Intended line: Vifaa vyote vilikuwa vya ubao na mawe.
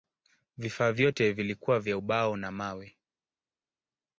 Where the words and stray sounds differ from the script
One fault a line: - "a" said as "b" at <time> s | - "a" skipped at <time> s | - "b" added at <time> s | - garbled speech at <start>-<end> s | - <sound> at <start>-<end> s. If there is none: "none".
none